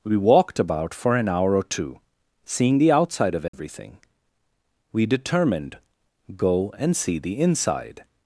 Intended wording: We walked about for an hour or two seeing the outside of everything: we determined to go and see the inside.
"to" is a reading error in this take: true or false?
true